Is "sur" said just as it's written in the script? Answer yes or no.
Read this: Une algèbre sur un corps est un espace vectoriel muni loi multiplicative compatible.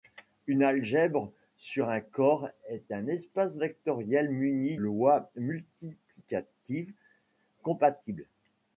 yes